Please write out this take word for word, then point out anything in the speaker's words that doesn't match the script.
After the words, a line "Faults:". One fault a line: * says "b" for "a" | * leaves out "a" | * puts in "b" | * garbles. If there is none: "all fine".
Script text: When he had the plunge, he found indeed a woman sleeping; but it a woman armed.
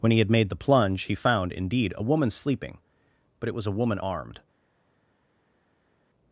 When he had made the plunge, he found indeed a woman sleeping; but it was a woman armed.
Faults:
* puts in "made"
* puts in "was"